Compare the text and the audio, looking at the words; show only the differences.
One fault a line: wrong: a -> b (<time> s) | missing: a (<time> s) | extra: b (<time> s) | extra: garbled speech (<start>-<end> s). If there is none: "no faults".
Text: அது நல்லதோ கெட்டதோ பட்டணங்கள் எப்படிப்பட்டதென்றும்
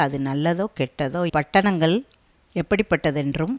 no faults